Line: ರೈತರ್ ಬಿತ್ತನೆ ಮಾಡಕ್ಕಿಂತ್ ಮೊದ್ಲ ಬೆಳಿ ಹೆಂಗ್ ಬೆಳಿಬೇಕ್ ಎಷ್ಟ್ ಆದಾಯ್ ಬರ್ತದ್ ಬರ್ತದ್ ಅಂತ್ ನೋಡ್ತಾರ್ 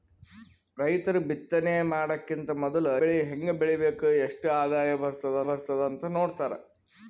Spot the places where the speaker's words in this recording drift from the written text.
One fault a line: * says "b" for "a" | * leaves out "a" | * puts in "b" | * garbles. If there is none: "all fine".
all fine